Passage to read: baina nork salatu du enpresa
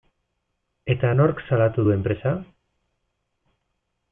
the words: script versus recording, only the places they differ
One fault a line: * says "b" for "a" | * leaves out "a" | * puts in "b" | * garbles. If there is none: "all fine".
* says "eta" for "baina"